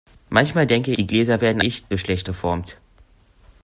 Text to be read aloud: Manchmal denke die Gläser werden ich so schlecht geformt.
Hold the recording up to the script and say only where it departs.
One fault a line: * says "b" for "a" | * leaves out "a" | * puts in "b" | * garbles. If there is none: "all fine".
all fine